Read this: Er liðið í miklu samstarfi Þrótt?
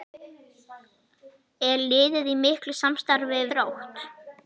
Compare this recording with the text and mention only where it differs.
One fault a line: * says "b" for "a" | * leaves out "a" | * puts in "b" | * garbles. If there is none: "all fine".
all fine